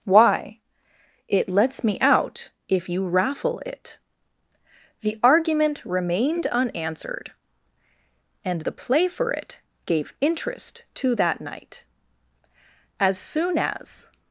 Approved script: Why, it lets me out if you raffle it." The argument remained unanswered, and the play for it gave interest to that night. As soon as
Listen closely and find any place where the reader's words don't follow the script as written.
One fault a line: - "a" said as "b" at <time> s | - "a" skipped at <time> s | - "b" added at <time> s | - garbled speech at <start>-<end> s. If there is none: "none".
none